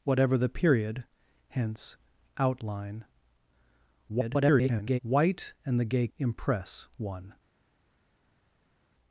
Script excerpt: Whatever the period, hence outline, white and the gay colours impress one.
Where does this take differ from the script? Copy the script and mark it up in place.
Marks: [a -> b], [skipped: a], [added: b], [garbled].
Whatever the period, hence outline, [garbled] white and the gay [skipped: colours] impress one.